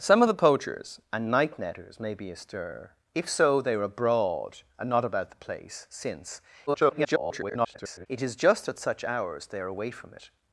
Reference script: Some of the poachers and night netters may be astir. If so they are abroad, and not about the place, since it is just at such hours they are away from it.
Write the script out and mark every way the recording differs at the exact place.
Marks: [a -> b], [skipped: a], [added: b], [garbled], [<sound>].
Some of the poachers and night netters may be astir. If so they are abroad, and not about the place, since [garbled] it is just at such hours they are away from it.